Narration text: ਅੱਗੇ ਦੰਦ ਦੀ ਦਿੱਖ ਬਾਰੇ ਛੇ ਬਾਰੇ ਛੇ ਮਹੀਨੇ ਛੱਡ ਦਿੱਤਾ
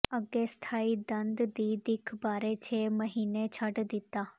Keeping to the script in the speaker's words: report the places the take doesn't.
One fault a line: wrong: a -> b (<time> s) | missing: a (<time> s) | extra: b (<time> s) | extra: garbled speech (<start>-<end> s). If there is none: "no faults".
extra: ਸਥਾਈ (0.5 s)
missing: ਬਾਰੇ ਛੇ (2.9 s)